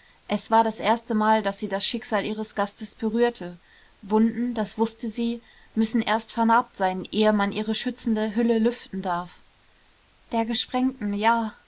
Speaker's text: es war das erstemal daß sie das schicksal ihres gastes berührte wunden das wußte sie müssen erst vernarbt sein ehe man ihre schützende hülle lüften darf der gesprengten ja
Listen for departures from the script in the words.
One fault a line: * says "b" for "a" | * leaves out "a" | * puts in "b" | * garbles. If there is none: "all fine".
all fine